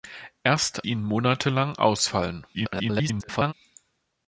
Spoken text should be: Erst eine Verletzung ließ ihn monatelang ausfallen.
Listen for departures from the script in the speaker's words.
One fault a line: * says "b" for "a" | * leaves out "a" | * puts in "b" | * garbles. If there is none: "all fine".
* leaves out "eine Verletzung ließ"
* garbles